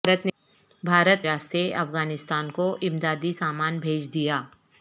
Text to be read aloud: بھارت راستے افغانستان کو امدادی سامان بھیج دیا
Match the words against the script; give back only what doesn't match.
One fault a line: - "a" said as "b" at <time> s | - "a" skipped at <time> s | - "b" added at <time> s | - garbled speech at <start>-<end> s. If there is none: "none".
none